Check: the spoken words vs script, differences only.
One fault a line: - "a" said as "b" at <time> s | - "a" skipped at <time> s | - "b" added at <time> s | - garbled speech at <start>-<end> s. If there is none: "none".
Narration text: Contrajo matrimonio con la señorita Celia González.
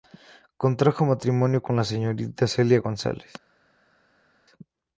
none